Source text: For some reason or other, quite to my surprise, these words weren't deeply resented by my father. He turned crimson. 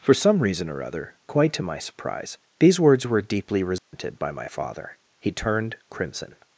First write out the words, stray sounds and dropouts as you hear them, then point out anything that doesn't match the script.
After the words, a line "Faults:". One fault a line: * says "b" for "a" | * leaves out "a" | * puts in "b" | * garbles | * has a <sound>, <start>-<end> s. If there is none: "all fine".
For some reason or other, quite to my surprise, these words were deeply resented by my father. He turned crimson.
Faults:
* says "were" for "weren't"
* has a dropout, 3.8-3.9 s